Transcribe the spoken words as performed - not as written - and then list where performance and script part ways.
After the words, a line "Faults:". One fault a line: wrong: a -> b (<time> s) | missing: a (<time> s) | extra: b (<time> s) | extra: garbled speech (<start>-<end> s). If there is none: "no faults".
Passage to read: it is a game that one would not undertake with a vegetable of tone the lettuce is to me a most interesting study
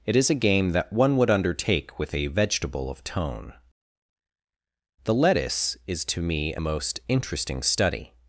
it is a game that one would undertake with a vegetable of tone the lettuce is to me a most interesting study
Faults:
missing: not (1.3 s)